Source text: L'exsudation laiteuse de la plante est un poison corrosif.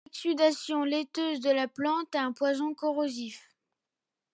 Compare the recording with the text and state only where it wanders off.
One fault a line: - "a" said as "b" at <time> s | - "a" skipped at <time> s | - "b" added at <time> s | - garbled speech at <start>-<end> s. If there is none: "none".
none